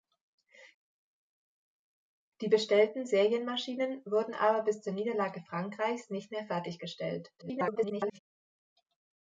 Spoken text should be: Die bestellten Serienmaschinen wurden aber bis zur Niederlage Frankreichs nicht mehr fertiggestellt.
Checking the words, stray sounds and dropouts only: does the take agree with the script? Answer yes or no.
no